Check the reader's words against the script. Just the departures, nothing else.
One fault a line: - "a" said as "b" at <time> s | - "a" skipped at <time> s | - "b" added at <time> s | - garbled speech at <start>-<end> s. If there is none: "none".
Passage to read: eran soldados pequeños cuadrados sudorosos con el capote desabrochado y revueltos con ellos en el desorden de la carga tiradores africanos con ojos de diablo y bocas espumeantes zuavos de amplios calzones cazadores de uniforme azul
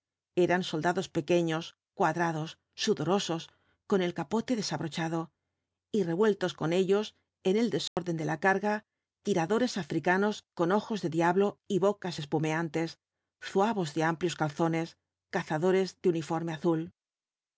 none